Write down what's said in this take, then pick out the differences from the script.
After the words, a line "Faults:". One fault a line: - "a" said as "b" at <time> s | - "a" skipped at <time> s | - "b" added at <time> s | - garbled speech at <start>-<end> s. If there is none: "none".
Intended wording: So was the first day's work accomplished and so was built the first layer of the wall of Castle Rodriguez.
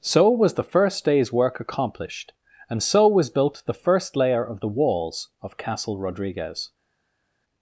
So was the first day's work accomplished and so was built the first layer of the walls of Castle Rodriguez.
Faults:
- "wall" said as "walls" at 4.7 s